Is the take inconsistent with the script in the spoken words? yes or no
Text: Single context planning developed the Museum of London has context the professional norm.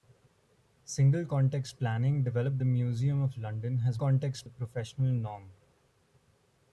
no